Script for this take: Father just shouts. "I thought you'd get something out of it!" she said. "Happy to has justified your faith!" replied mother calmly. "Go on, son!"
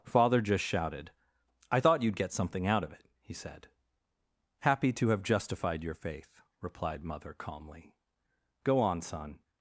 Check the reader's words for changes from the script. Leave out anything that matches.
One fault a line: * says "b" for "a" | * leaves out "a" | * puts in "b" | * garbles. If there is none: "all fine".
* says "shouted" for "shouts"
* says "he" for "she"
* says "have" for "has"